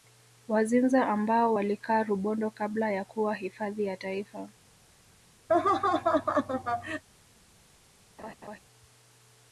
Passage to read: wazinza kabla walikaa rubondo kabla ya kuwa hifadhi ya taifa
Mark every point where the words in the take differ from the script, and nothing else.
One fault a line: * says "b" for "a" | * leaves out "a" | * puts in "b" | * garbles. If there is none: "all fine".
* says "ambao" for "kabla"